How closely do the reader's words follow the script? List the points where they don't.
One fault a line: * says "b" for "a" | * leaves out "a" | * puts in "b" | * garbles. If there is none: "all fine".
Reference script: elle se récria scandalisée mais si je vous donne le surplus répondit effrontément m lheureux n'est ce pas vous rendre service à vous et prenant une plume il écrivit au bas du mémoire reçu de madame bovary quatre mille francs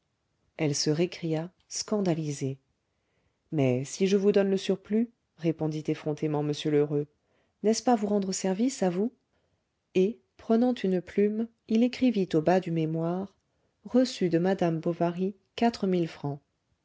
all fine